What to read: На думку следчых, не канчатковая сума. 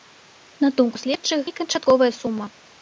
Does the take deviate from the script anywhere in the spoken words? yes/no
no